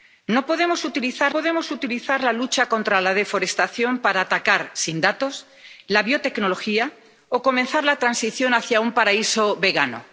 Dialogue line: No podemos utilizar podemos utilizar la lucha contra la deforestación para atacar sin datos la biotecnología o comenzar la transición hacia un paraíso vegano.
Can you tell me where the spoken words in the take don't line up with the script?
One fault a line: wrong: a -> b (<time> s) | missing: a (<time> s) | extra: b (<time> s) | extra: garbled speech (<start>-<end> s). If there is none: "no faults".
no faults